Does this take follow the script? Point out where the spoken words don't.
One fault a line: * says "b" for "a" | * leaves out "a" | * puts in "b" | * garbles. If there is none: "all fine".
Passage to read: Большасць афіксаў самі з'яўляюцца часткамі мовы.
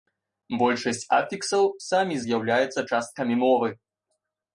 all fine